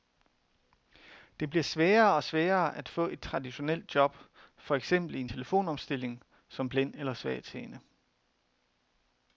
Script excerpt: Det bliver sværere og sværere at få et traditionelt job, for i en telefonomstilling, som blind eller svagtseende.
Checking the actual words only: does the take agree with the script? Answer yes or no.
no